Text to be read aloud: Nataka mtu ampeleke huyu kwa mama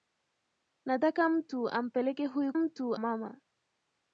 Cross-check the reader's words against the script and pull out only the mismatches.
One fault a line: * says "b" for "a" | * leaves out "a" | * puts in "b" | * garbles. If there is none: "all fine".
* says "mtu" for "kwa"